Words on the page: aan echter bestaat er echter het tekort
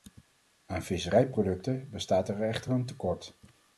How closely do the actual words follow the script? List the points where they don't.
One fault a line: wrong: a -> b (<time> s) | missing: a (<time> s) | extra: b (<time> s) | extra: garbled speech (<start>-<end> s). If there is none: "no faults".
wrong: echter -> visserijproducten (0.8 s)
wrong: het -> een (2.7 s)